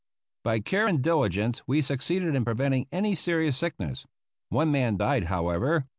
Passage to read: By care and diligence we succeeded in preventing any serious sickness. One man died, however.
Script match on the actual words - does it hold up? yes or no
yes